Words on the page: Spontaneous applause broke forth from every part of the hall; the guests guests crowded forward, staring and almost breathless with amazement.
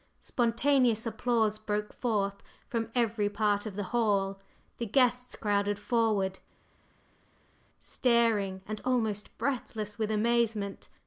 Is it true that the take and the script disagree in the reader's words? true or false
true